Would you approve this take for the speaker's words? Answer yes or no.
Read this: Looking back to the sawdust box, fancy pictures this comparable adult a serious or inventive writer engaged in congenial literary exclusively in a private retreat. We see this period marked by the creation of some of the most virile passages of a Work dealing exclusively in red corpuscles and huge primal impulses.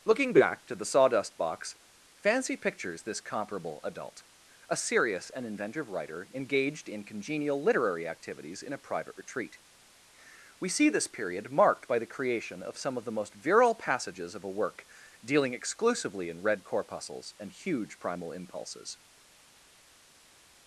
no